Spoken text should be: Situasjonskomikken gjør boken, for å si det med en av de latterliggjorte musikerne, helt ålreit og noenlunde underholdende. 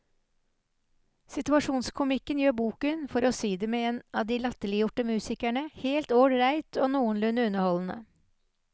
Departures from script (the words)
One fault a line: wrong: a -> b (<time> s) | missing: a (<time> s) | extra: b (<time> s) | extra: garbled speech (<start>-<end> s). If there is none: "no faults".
no faults